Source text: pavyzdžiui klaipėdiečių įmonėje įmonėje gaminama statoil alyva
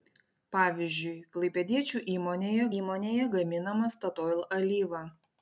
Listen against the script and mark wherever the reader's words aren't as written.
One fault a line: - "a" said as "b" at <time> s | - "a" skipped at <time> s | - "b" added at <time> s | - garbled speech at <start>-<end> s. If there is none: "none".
none